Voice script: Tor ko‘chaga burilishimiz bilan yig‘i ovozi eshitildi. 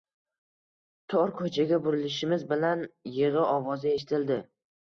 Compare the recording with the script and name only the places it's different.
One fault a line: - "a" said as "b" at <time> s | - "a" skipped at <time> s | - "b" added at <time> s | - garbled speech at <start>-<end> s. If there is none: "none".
none